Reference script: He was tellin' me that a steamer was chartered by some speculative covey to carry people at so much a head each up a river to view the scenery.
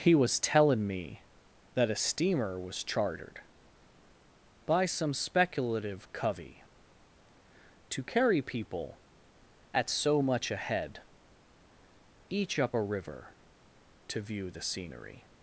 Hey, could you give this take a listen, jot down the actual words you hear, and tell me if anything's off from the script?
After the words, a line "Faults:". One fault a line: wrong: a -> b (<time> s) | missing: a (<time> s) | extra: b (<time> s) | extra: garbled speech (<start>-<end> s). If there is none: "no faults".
He was tellin' me that a steamer was chartered by some speculative covey to carry people at so much a head each up a river to view the scenery.
Faults:
no faults